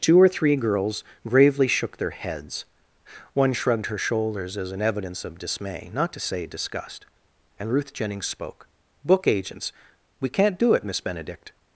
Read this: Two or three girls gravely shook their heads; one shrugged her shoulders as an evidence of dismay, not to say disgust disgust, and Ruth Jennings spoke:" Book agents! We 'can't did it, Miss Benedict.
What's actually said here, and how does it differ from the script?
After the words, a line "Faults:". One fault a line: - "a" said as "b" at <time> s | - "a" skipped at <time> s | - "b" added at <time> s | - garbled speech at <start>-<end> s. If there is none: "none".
Two or three girls gravely shook their heads; one shrugged her shoulders as an evidence of dismay, not to say disgust, and Ruth Jennings spoke:" Book agents! We 'can't do it, Miss Benedict.
Faults:
- "disgust" skipped at 7.0 s
- "did" said as "do" at 10.6 s